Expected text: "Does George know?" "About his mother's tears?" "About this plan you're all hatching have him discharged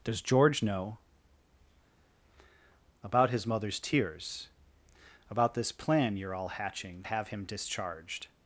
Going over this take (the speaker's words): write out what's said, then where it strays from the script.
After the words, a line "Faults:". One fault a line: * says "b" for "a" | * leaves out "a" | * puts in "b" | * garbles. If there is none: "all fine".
"Does George know?" "About his mother's tears?" "About this plan you're all hatching have him discharged
Faults:
all fine